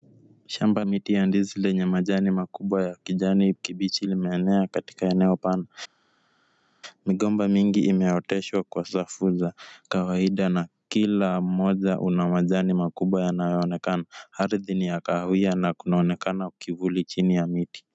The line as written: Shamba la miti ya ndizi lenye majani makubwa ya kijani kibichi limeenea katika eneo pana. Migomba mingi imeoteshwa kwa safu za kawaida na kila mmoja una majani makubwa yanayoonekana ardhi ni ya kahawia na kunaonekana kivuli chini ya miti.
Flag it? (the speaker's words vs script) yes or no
yes